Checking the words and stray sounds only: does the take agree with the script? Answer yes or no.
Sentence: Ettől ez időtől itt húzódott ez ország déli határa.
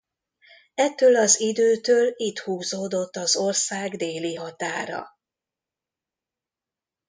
no